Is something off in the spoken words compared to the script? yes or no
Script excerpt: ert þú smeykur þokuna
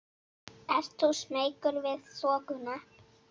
yes